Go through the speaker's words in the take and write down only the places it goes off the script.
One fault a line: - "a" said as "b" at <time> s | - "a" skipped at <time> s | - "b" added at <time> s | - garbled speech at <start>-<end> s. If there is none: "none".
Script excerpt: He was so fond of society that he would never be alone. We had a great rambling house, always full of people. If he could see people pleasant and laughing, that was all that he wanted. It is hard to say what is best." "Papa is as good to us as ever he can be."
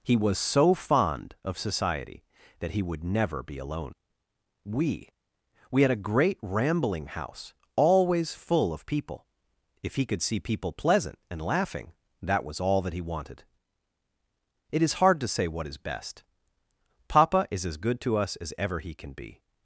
- "We" added at 5.7 s